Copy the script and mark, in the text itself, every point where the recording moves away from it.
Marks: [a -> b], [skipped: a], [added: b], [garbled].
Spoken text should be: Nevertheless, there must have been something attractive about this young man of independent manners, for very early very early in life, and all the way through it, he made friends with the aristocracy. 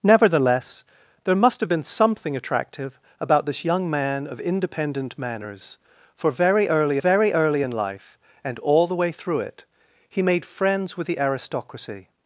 Nevertheless, there must have been something attractive about this young man of independent manners, for very early very early in life, and all the way through it, he made friends with the aristocracy.